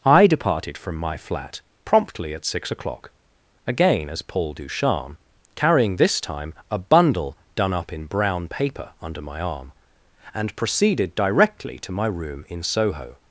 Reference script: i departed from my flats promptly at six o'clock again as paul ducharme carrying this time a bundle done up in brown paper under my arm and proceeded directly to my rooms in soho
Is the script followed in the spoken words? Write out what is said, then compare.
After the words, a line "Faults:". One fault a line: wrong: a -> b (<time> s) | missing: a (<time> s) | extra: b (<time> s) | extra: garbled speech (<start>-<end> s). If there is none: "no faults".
i departed from my flat promptly at six o'clock again as paul ducharme carrying this time a bundle done up in brown paper under my arm and proceeded directly to my room in soho
Faults:
wrong: flats -> flat (1.2 s)
wrong: rooms -> room (12.1 s)